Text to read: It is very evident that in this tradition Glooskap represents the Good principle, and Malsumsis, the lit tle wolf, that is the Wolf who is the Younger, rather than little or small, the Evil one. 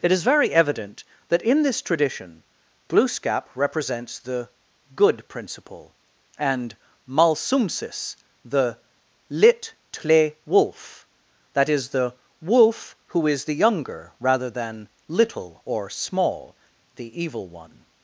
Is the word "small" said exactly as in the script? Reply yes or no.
yes